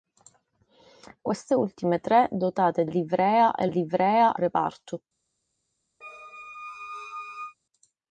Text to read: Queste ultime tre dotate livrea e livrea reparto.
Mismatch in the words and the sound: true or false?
true